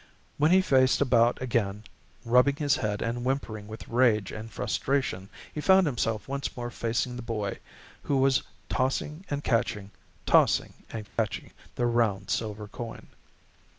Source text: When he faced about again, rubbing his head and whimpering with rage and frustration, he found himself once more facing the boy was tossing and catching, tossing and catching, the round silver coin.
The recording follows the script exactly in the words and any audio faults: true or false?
false